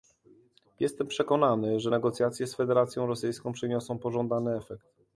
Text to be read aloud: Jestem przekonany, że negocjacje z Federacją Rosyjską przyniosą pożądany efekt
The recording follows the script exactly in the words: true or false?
true